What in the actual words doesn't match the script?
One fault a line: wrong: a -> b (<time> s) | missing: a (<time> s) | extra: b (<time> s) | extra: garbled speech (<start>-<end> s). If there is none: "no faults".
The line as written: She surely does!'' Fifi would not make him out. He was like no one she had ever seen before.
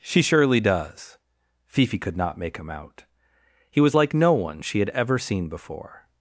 wrong: would -> could (2.0 s)